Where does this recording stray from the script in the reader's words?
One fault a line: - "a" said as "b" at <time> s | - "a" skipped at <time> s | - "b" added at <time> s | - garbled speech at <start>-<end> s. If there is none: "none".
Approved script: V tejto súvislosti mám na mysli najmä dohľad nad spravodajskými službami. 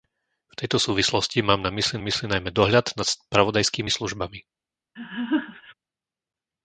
- "mysli" added at 2.0 s